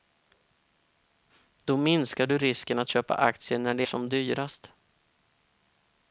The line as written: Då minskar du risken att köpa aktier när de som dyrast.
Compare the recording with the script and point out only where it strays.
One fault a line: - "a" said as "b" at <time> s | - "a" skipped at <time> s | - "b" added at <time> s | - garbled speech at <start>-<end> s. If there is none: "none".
none